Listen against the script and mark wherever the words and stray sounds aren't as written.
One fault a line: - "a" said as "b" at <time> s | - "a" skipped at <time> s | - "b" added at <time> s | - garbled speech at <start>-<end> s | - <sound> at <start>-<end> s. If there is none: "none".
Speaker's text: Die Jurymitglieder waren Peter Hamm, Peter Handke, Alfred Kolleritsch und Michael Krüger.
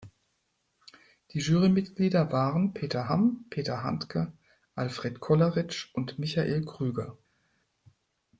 none